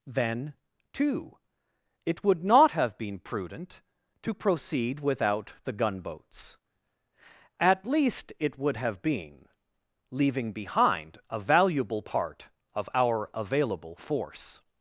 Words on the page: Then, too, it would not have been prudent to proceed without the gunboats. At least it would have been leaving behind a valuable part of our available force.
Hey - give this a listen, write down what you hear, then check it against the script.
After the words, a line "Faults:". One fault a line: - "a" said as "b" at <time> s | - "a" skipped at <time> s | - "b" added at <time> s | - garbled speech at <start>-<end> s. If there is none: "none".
Then, too, it would not have been prudent to proceed without the gunboats. At least it would have been leaving behind a valuable part of our available force.
Faults:
none